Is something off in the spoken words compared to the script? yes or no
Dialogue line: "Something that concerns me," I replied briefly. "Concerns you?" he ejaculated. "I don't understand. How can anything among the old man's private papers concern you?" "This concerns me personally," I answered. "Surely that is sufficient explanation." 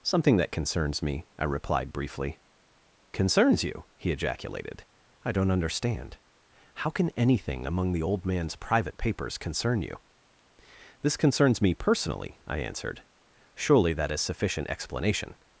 no